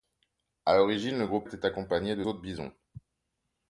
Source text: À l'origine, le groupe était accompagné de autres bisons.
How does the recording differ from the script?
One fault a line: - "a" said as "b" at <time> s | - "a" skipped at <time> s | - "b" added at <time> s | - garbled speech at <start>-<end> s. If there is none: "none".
none